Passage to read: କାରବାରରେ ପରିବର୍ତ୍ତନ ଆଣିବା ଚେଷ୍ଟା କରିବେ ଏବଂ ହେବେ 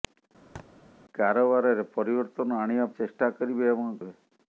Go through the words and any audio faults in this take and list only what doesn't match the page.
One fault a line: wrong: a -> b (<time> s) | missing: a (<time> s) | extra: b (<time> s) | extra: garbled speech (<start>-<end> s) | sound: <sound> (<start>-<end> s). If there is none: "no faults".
sound: thud (0.6-0.7 s)